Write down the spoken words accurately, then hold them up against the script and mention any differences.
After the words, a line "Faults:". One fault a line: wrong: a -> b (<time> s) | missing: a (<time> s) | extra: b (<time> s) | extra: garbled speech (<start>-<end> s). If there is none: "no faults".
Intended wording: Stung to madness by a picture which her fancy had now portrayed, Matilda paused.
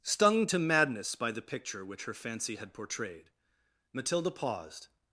Stung to madness by the picture which her fancy had portrayed, Matilda paused.
Faults:
wrong: a -> the (1.3 s)
missing: now (2.7 s)